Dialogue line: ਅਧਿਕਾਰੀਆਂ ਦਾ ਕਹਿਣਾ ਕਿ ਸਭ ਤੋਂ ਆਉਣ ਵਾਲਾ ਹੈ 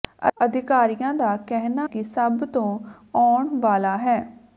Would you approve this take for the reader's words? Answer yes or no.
yes